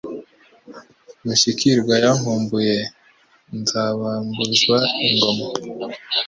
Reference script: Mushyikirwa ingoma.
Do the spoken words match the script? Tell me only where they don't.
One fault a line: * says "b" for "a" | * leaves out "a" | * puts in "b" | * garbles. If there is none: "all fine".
* puts in "yankumbuye Nzabambuzwa"